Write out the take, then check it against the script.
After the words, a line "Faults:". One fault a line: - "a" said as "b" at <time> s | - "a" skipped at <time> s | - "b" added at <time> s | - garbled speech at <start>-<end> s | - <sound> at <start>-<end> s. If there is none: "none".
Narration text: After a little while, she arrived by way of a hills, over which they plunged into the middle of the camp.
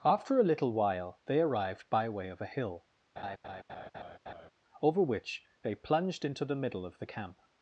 After a little while, they arrived by way of a hill, over which they plunged into the middle of the camp.
Faults:
- "she" said as "they" at 1.3 s
- "hills" said as "hill" at 2.5 s
- laugh at 3.2-4.5 s